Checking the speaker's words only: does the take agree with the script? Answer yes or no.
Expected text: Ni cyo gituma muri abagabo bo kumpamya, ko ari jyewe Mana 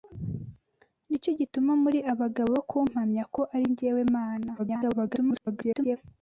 no